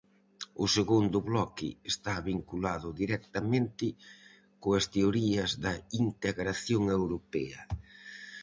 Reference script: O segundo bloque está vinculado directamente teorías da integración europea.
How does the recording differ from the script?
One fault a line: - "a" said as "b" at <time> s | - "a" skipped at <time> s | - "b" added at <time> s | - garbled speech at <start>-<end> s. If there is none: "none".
- "coas" added at 4.6 s